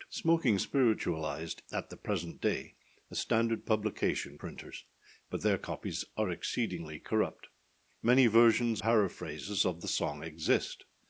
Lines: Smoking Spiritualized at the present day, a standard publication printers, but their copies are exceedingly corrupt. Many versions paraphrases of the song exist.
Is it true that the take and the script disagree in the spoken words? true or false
false